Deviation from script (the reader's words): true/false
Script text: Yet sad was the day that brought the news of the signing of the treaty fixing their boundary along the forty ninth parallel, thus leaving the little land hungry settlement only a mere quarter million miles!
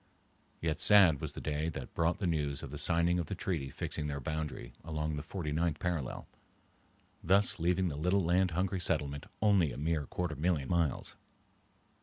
false